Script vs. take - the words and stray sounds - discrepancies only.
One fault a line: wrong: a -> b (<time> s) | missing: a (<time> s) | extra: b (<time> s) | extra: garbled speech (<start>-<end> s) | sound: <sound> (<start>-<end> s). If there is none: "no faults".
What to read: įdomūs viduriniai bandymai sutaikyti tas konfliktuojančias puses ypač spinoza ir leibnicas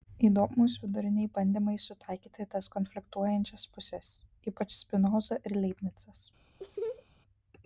sound: laugh (6.6-7.1 s)